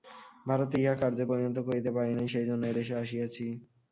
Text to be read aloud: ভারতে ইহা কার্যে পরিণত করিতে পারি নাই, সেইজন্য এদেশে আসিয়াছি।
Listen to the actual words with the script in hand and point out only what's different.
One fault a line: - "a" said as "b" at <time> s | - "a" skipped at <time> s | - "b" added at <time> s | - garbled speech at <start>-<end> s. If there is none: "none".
none